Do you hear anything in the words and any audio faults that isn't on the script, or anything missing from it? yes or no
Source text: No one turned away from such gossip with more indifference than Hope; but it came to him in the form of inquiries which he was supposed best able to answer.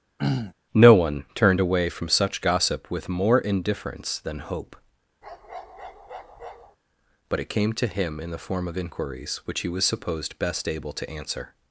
yes